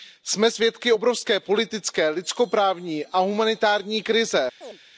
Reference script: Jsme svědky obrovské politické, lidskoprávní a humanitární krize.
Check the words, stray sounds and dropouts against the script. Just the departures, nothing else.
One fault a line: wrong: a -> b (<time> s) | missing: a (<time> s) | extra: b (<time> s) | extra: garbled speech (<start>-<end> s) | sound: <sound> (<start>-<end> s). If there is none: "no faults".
sound: chirp (4.6-4.8 s)